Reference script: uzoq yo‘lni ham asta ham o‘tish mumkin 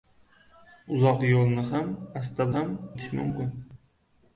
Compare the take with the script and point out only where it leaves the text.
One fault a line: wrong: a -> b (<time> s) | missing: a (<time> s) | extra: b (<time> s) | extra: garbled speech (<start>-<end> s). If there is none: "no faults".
no faults